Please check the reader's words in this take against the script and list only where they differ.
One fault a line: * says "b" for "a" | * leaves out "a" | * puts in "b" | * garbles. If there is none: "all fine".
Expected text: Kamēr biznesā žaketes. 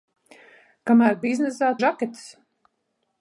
all fine